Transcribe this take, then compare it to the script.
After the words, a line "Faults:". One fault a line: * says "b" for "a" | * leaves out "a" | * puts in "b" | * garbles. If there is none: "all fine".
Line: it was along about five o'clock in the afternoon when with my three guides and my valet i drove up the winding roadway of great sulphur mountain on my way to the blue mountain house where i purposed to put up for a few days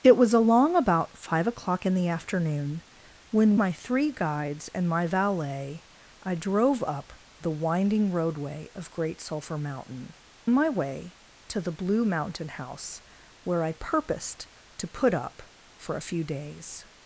it was along about five o'clock in the afternoon when my three guides and my valet i drove up the winding roadway of great sulphur mountain my way to the blue mountain house where i purposed to put up for a few days
Faults:
* leaves out "with"
* leaves out "on"